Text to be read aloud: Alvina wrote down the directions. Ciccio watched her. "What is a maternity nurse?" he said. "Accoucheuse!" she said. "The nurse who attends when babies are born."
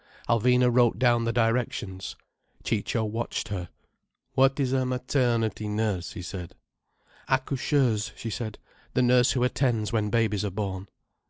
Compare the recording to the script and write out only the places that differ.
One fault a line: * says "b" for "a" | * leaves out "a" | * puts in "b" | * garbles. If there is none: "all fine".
all fine